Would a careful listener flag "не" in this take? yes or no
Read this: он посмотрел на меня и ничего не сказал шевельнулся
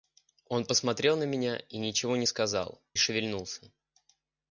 no